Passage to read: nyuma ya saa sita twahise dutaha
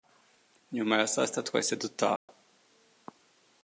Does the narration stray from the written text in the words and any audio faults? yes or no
yes